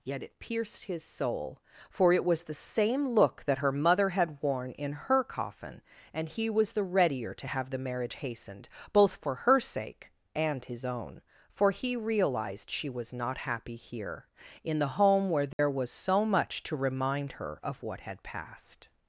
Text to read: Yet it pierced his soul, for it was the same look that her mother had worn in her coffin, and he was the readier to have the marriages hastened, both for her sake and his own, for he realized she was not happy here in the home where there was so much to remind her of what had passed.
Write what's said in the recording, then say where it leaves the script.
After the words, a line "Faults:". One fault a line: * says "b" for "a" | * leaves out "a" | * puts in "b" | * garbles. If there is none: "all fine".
Yet it pierced his soul, for it was the same look that her mother had worn in her coffin, and he was the readier to have the marriage hastened, both for her sake and his own, for he realized she was not happy here in the home where there was so much to remind her of what had passed.
Faults:
* says "marriage" for "marriages"